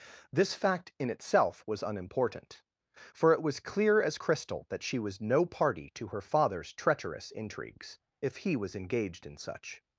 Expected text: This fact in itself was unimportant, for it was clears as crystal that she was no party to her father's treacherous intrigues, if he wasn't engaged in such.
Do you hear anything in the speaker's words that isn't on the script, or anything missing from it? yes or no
yes